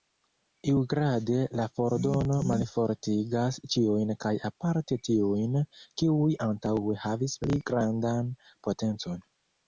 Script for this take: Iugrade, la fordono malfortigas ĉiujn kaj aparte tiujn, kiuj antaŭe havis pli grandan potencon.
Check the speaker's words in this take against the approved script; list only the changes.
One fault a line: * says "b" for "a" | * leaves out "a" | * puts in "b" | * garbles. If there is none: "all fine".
all fine